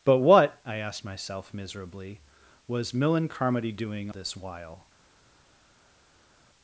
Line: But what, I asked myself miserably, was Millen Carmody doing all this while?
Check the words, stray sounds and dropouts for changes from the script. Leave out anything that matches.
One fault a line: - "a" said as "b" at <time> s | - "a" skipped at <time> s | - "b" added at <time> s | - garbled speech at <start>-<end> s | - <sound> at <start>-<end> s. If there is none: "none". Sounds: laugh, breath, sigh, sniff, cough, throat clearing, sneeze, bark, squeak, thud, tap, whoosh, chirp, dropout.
- "all" skipped at 4.1 s